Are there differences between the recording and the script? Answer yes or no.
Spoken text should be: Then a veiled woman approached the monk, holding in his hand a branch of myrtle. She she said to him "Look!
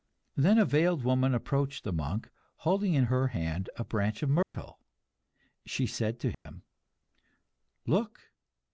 yes